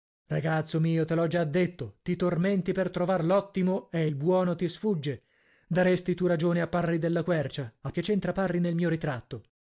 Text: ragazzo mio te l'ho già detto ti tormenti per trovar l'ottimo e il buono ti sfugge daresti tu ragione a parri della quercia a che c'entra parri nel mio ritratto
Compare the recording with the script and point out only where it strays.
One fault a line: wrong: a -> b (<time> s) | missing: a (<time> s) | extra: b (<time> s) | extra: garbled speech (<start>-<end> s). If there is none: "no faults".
no faults